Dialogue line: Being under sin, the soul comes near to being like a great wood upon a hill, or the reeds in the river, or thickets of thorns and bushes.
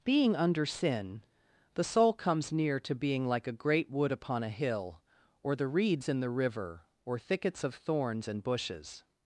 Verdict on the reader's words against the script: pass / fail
pass